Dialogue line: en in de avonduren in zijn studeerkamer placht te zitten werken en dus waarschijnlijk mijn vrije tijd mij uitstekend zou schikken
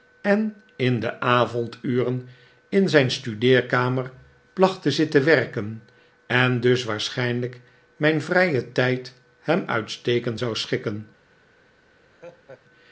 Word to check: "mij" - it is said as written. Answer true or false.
false